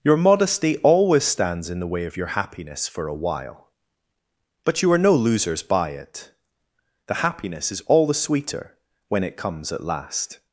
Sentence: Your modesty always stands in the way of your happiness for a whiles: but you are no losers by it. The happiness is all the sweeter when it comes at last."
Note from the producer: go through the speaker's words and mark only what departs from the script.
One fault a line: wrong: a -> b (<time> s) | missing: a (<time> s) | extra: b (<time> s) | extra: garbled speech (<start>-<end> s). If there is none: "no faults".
wrong: whiles -> while (3.1 s)